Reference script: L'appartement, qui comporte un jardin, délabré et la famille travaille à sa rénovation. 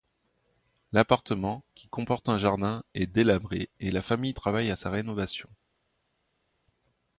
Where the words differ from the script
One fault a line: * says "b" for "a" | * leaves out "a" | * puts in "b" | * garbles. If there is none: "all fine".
* puts in "est"